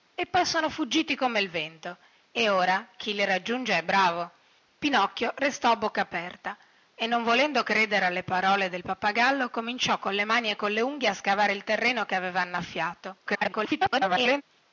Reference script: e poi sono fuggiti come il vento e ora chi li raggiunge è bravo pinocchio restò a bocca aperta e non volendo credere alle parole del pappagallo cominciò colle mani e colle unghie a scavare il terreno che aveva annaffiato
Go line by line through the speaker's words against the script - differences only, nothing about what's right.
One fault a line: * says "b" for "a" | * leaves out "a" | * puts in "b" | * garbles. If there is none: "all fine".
* garbles